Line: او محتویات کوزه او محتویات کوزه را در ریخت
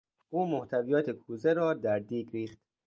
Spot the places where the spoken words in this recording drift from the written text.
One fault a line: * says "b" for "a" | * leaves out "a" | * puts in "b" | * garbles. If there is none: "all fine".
* leaves out "او محتویات کوزه"
* puts in "دیگ"